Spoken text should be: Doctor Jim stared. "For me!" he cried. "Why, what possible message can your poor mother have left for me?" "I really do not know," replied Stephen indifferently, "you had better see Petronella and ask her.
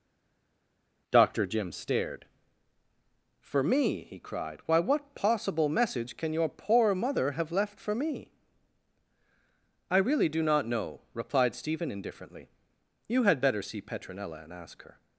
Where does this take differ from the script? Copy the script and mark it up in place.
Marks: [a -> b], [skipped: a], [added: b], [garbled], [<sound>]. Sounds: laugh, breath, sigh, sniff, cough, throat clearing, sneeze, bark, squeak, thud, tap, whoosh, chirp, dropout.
Doctor Jim stared. "For me!" he cried. "Why, what possible message can your poor mother have left for me?" "I really do not know," replied Stephen indifferently, "you had better see Petronella and ask her.